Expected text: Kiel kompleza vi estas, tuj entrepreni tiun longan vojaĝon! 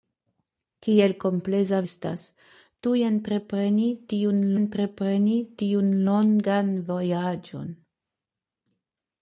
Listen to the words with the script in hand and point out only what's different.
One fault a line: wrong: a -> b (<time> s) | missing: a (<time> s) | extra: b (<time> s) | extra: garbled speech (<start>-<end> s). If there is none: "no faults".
missing: vi (1.8 s)
extra: entrepreni tiun (4.6 s)